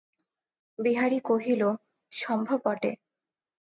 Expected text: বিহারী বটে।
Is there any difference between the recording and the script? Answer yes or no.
yes